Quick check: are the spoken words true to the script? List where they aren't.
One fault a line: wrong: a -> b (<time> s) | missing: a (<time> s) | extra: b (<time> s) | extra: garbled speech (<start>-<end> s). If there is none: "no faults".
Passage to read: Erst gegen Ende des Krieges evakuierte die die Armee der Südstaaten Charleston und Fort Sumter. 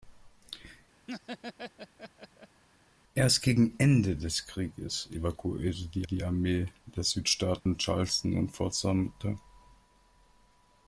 no faults